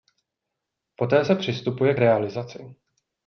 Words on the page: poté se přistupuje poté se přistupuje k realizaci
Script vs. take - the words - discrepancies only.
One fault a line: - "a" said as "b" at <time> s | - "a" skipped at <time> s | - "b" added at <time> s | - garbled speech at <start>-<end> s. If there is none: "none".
- "poté se přistupuje" skipped at 1.9 s